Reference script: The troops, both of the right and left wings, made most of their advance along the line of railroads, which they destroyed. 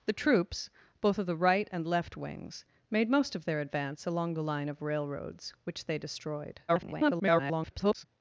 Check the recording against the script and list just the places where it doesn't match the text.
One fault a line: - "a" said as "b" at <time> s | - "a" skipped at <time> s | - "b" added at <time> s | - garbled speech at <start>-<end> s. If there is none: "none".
- garbled speech at 6.7-8.1 s